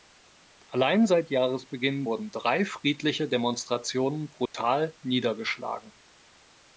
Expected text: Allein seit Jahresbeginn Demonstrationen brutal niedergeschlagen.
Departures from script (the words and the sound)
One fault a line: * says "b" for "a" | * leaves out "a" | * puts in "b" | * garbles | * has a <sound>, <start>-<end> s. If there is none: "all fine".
* puts in "wurden drei friedliche"
* has a dropout, 4.5-4.5 s